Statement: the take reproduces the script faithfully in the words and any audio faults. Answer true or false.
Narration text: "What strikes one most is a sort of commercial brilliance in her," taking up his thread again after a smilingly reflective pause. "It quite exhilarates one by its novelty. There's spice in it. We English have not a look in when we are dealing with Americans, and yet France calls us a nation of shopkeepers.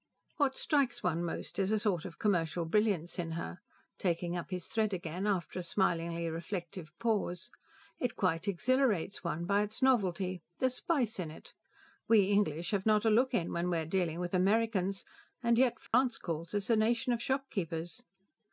false